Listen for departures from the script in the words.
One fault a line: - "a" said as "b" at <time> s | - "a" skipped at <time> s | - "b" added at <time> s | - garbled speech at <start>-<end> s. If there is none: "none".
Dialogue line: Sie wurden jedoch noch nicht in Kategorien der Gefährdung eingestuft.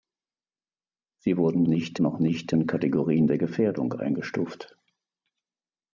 - "jedoch" said as "nicht" at 1.7 s